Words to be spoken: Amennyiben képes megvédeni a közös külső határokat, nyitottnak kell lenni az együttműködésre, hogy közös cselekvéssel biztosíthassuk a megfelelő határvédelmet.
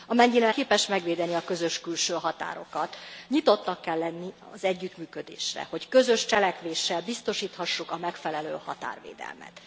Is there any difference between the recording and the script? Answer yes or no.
no